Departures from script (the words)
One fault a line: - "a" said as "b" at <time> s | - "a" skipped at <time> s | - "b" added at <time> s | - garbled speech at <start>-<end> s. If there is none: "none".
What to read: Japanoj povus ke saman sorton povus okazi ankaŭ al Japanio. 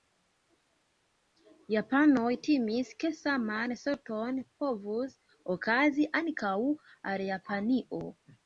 - "povus" said as "timis" at 2.5 s